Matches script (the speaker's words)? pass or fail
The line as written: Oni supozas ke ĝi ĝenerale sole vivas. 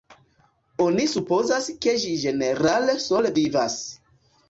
pass